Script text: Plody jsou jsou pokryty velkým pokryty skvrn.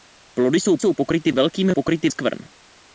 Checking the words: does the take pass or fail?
pass